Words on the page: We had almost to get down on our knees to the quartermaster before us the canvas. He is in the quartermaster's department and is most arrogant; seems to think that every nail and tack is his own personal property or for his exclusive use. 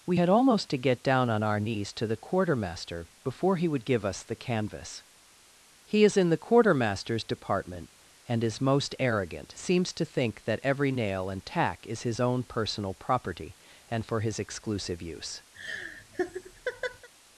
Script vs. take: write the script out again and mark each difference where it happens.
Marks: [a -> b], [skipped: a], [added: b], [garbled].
We had almost to get down on our knees to the quartermaster before [added: he would give] us the canvas. He is in the quartermaster's department and is most arrogant; seems to think that every nail and tack is his own personal property [or -> and] for his exclusive use.